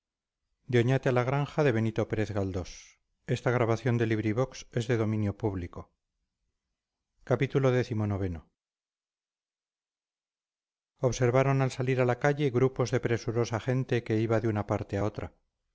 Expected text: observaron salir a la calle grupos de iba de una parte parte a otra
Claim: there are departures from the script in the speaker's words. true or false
true